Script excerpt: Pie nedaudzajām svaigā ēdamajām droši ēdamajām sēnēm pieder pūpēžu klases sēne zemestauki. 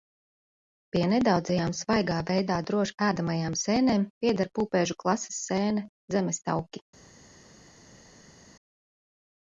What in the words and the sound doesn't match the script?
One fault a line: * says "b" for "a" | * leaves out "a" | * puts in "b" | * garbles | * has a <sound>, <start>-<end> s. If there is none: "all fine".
* says "veidā" for "ēdamajām"